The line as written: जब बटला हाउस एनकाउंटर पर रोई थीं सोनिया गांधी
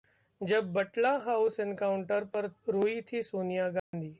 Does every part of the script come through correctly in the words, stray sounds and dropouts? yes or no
no